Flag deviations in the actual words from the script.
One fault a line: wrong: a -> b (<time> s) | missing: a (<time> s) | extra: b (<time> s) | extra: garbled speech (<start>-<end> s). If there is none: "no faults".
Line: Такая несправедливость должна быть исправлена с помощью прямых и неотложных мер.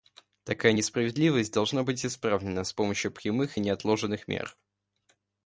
no faults